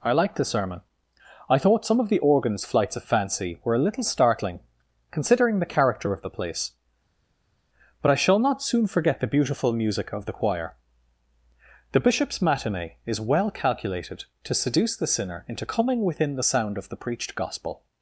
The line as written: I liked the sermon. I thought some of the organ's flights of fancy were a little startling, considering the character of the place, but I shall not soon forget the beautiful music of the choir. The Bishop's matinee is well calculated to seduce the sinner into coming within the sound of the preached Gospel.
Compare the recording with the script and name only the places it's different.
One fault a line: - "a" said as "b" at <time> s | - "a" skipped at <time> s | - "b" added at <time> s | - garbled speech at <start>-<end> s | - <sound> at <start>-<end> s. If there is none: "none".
none